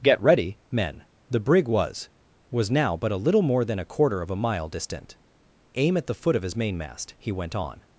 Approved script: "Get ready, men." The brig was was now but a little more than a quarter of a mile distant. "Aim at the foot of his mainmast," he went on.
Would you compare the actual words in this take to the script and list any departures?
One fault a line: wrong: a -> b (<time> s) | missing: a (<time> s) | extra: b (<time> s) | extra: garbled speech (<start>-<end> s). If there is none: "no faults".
no faults